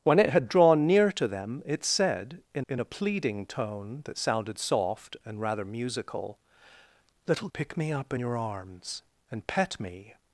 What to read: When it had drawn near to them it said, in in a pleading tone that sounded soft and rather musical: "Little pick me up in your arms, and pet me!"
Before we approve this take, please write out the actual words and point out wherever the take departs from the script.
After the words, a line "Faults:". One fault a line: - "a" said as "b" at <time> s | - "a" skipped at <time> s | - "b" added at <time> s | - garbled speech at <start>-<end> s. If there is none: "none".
When it had drawn near to them it said, in in a pleading tone that sounded soft and rather musical: "Little pick me up in your arms, and pet me!"
Faults:
none